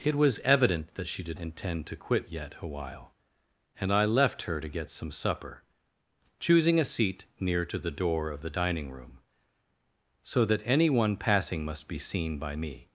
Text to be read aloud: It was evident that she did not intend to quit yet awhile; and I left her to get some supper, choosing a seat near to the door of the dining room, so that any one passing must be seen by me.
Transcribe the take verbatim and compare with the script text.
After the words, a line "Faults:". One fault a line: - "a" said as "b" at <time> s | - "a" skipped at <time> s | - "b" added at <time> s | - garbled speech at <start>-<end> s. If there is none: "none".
It was evident that she did intend to quit yet awhile; and I left her to get some supper, choosing a seat near to the door of the dining room, so that any one passing must be seen by me.
Faults:
- "not" skipped at 1.4 s